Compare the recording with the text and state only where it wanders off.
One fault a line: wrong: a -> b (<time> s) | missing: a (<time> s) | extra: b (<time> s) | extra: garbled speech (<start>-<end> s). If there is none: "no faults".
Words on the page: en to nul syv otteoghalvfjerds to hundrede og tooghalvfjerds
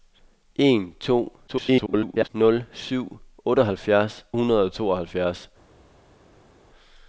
extra: garbled speech (1.5-2.3 s)
missing: to (4.3 s)